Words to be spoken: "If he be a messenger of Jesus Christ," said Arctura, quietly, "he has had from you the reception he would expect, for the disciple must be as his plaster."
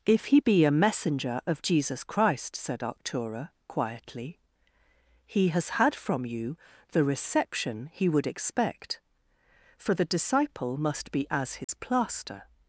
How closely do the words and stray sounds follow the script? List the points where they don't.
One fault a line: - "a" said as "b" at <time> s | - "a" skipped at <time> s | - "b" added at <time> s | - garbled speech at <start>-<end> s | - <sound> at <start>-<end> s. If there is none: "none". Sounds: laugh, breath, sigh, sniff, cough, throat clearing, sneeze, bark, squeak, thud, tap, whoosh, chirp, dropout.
- dropout at 11.6-11.7 s